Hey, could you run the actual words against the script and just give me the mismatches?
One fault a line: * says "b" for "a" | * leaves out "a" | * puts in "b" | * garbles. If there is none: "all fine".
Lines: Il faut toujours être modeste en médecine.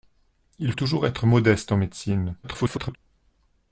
* leaves out "faut"
* garbles